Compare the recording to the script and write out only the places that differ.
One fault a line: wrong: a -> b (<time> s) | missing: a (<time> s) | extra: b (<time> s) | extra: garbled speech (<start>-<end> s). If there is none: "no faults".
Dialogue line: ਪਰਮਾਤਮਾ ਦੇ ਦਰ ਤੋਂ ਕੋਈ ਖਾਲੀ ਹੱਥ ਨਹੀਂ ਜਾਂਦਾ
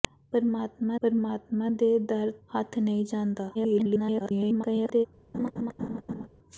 extra: ਪਰਮਾਤਮਾ (1.0 s)
missing: ਤੋਂ ਕੋਈ ਖਾਲੀ (2.3 s)
extra: garbled speech (3.5-5.1 s)